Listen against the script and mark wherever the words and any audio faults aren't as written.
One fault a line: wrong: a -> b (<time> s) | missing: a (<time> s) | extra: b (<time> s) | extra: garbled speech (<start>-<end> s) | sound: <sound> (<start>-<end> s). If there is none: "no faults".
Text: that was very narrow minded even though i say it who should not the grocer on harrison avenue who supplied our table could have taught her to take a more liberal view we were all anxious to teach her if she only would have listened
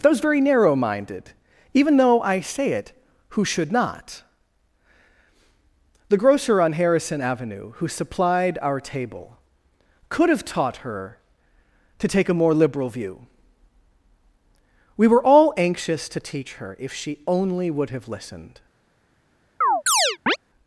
wrong: that was -> those (0.0 s)
sound: chirp (19.6-20.4 s)